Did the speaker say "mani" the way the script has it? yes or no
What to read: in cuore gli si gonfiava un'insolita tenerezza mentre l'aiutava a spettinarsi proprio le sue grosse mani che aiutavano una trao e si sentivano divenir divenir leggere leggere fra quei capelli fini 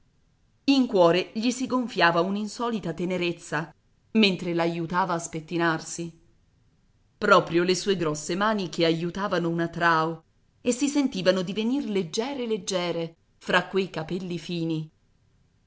yes